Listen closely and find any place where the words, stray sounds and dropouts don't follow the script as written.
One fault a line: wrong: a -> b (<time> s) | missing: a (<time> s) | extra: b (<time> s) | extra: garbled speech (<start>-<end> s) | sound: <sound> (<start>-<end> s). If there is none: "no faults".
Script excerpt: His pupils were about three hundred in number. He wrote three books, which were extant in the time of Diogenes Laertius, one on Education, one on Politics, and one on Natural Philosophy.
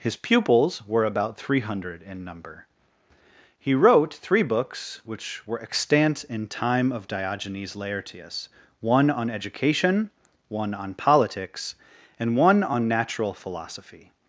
missing: the (6.5 s)